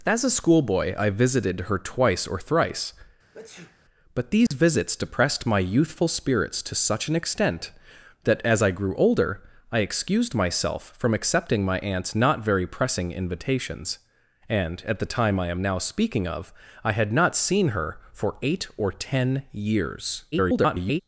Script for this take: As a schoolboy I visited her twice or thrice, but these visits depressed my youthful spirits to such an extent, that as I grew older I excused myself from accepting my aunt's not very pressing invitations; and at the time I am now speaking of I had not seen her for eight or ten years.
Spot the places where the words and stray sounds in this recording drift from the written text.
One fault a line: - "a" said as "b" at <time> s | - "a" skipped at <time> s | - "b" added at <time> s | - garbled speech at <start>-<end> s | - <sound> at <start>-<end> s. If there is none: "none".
- sneeze at 3.3-3.8 s
- dropout at 4.5-4.5 s
- garbled speech at 20.3-21.0 s